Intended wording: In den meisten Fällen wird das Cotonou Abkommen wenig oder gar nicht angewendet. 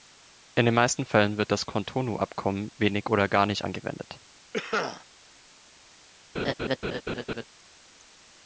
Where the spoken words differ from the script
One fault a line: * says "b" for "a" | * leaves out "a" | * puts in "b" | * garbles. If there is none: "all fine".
all fine